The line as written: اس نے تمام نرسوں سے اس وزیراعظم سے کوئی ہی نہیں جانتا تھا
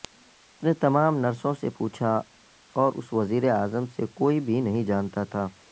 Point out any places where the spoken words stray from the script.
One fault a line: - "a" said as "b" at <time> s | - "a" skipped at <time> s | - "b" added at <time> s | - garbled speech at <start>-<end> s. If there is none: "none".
- "پوچھا اور" added at 1.8 s
- "ہی" said as "بھی" at 4.4 s